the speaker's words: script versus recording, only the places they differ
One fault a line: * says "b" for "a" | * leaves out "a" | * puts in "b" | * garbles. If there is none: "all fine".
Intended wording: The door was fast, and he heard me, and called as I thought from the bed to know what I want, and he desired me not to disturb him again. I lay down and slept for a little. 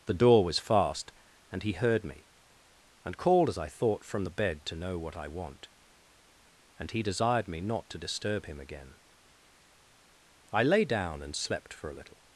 all fine